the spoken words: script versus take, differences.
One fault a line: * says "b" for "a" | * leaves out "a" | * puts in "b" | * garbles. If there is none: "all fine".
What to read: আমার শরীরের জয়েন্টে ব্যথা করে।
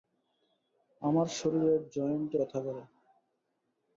all fine